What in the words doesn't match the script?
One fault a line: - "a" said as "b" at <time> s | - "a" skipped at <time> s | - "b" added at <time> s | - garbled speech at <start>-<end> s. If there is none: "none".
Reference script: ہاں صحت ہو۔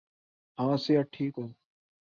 - "ٹھیک" added at 1.1 s